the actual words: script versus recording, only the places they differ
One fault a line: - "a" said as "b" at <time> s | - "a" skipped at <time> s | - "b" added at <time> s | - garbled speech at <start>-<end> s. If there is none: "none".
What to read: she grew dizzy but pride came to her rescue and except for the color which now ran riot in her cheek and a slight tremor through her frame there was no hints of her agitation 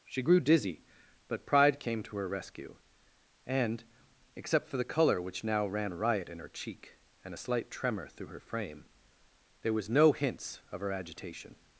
none